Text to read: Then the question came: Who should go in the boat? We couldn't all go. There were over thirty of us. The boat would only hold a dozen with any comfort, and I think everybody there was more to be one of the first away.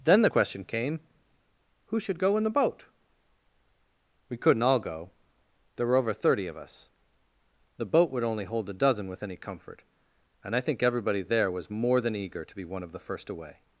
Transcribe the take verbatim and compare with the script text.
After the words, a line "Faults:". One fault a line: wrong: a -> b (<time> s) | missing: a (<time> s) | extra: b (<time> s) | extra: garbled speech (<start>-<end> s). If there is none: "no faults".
Then the question came: Who should go in the boat? We couldn't all go. There were over thirty of us. The boat would only hold a dozen with any comfort, and I think everybody there was more than eager to be one of the first away.
Faults:
extra: than eager (12.0 s)